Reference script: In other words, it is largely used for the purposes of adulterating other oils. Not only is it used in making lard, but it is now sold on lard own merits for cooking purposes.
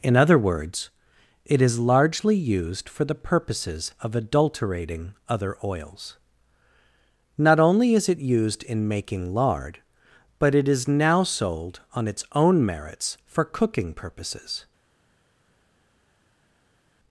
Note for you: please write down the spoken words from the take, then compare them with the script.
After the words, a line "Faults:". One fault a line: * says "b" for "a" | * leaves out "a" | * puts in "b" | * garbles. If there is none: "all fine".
In other words, it is largely used for the purposes of adulterating other oils. Not only is it used in making lard, but it is now sold on its own merits for cooking purposes.
Faults:
* says "its" for "lard"